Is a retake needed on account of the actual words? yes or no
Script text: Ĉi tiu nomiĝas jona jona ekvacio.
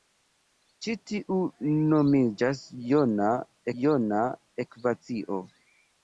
no